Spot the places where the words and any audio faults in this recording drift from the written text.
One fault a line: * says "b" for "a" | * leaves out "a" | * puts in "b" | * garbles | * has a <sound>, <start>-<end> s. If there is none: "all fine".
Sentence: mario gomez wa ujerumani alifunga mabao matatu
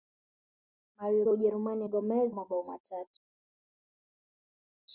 * leaves out "gomez"
* says "gomez" for "alifunga"